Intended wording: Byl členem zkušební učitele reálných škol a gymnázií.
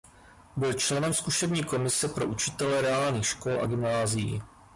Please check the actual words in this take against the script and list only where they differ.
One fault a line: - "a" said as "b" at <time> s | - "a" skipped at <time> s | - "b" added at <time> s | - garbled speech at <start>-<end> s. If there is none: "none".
- "komise pro" added at 1.6 s